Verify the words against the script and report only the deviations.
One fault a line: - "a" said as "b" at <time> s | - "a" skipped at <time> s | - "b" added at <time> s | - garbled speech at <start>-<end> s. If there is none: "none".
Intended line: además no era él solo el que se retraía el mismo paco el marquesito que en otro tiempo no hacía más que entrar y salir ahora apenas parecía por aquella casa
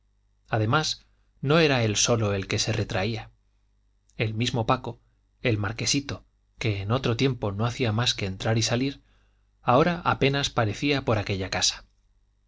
none